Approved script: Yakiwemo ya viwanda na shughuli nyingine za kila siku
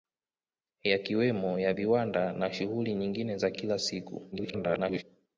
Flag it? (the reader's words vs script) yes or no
yes